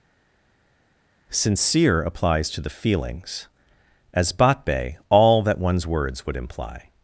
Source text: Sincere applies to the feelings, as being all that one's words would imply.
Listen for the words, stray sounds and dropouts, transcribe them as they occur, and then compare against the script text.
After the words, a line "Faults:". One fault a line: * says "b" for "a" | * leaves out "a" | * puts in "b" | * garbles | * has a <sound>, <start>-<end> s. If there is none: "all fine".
Sincere applies to the feelings, as batbe all that one's words would imply.
Faults:
* says "batbe" for "being"